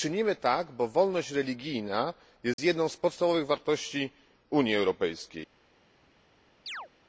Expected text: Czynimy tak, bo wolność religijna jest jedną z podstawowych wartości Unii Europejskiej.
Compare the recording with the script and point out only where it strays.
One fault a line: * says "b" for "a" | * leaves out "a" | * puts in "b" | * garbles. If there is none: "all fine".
all fine